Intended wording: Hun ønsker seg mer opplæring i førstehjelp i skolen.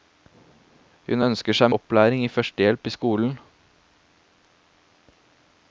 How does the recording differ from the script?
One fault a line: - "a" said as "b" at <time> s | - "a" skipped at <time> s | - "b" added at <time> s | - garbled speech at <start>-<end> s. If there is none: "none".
- "mer" skipped at 1.7 s